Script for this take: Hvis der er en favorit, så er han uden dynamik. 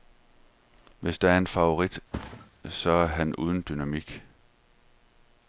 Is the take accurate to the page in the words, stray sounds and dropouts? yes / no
no